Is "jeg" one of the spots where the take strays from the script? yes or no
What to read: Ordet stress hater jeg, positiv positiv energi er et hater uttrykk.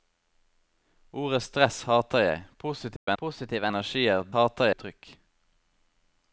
no